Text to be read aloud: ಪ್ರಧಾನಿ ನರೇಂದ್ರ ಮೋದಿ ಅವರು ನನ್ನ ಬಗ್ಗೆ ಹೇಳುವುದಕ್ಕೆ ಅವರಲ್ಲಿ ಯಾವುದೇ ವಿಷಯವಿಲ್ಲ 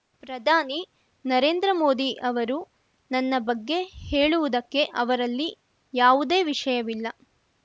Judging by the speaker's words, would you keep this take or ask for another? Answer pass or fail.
pass